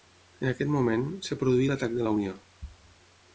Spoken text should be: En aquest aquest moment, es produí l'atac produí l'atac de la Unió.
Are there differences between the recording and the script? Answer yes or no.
yes